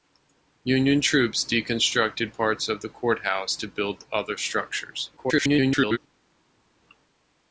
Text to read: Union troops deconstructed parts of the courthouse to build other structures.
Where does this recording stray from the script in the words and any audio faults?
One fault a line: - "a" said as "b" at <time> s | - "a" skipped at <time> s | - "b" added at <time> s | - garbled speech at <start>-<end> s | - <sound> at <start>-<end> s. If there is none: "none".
- garbled speech at 5.2-6.0 s